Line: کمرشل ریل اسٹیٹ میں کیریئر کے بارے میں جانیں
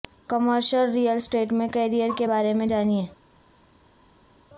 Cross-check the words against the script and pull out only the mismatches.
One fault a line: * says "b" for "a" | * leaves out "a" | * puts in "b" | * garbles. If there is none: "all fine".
all fine